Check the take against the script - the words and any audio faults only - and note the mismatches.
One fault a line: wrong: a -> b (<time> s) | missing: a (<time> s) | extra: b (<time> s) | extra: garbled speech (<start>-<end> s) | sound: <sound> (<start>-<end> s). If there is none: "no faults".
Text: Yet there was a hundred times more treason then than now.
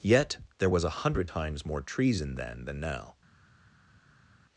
no faults